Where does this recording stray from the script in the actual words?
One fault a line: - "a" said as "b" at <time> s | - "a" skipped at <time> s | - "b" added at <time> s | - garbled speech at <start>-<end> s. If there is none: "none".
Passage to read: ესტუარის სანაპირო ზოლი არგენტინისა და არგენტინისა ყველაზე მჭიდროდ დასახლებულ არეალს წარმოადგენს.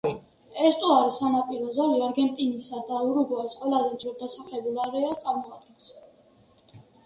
- "არგენტინისა" said as "ურუგვაის" at 3.1 s